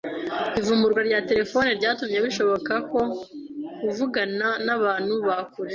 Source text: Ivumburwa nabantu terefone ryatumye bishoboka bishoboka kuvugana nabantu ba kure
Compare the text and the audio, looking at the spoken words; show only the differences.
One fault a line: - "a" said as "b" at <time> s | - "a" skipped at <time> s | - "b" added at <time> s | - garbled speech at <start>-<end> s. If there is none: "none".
- "nabantu" said as "rya" at 1.1 s
- "bishoboka" skipped at 2.7 s